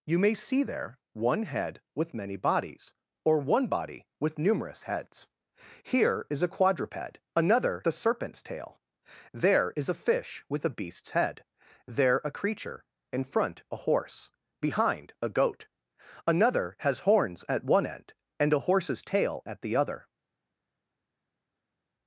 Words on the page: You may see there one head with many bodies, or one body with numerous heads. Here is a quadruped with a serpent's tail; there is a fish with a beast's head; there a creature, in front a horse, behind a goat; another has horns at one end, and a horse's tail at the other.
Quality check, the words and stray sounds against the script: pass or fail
fail